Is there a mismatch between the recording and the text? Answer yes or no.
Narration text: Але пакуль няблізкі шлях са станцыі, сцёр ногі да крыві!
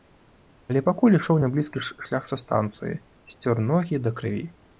yes